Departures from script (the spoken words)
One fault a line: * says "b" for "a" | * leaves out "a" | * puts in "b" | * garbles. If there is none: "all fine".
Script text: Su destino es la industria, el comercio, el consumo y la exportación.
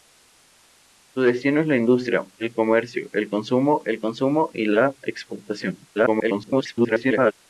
* puts in "el consumo"
* garbles